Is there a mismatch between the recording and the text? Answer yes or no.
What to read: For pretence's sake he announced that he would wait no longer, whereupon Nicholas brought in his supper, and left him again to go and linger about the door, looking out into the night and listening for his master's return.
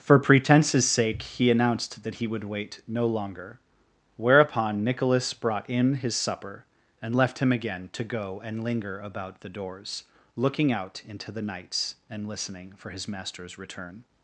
yes